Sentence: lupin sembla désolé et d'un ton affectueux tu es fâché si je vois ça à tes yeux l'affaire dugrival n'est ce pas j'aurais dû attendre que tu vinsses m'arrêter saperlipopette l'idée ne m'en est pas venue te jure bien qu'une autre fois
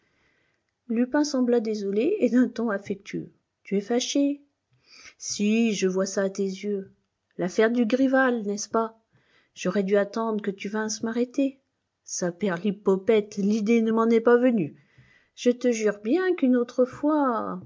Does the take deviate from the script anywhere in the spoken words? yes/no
yes